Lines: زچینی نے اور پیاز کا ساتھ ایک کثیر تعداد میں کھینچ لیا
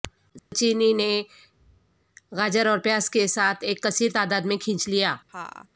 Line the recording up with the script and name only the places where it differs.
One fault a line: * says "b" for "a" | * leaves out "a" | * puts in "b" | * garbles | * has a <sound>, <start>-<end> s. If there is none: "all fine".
* has a dropout, 0.4-0.5 s
* puts in "گاجر"
* says "کے" for "کا"
* has a laugh, 5.3-5.7 s